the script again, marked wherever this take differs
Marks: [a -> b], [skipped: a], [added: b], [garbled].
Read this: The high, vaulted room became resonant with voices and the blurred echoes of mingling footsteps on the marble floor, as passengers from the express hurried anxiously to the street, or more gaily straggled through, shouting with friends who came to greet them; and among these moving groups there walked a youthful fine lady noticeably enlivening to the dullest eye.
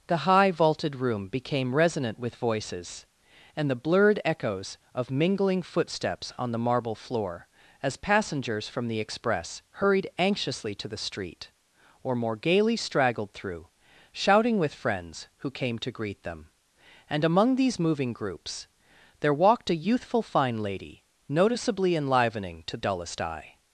The high, vaulted room became resonant with voices and the blurred echoes of mingling footsteps on the marble floor, as passengers from the express hurried anxiously to the street, or more gaily straggled through, shouting with friends who came to greet them; and among these moving groups there walked a youthful fine lady noticeably enlivening to [skipped: the] dullest eye.